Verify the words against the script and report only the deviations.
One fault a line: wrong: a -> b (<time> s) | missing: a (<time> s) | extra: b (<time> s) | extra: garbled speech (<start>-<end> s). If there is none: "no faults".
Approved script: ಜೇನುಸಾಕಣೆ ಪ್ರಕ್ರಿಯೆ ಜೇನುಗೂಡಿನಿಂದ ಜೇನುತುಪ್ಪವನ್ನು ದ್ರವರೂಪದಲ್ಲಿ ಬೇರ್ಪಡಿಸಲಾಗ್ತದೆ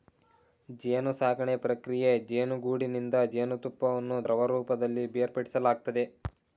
no faults